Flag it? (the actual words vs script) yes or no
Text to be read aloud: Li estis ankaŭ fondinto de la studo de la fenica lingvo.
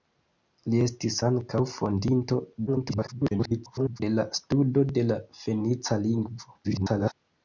yes